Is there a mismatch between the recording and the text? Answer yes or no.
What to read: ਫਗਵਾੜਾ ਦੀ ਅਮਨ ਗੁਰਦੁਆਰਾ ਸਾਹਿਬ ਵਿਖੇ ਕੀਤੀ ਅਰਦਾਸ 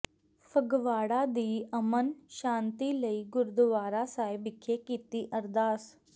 yes